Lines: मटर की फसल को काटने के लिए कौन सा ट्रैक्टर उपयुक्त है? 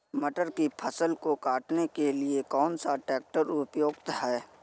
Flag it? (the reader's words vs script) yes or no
no